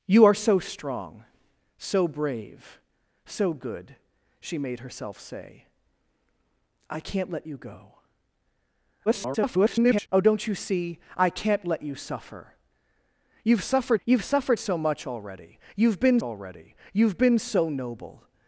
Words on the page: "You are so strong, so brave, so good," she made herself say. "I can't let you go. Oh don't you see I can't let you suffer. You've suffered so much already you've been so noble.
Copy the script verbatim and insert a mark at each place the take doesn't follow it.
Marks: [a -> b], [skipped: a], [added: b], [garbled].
"You are so strong, so brave, so good," she made herself say. "I can't let you go. [garbled] Oh don't you see I can't let you suffer. You've suffered [added: you've suffered] so much already you've been [added: already you've been] so noble.